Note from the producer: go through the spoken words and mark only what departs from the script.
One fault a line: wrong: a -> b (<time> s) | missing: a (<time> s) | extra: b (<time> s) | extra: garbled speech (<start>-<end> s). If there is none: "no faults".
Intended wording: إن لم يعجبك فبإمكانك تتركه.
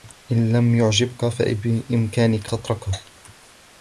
no faults